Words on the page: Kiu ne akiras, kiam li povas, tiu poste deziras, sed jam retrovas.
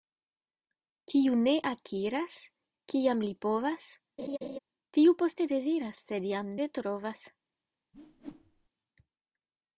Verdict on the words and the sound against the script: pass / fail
fail